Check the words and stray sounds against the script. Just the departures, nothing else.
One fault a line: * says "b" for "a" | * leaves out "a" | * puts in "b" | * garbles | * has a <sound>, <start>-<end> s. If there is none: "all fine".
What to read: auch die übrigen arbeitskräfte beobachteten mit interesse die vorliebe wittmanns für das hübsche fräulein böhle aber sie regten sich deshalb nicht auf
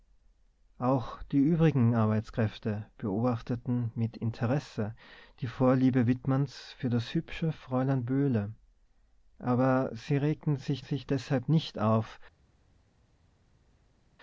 * puts in "sich"